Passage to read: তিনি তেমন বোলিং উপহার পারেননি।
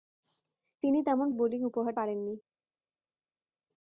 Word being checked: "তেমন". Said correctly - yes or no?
yes